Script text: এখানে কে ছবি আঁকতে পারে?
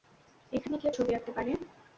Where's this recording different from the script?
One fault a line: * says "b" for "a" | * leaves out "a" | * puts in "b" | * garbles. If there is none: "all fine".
all fine